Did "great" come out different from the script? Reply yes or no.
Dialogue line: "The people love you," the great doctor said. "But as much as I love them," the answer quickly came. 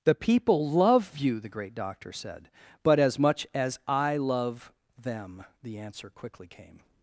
no